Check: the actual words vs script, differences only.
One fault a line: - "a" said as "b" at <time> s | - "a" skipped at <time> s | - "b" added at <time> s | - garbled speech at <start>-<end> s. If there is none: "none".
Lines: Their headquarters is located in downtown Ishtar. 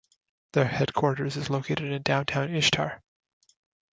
none